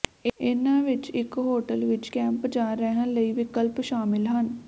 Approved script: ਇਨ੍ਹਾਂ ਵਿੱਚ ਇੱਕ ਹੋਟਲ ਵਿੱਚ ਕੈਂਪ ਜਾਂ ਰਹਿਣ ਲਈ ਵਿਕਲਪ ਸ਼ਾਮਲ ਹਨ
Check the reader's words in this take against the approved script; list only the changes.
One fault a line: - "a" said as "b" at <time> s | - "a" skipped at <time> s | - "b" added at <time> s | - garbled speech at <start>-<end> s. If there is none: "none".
none